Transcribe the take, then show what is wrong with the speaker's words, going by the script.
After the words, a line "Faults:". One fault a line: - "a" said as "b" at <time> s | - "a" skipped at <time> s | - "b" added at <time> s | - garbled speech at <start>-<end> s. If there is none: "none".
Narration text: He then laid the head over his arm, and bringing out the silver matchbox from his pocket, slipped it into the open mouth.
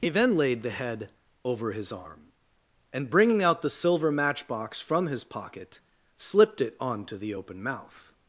He then laid the head over his arm, and bringing out the silver matchbox from his pocket, slipped it onto the open mouth.
Faults:
- "into" said as "onto" at 6.8 s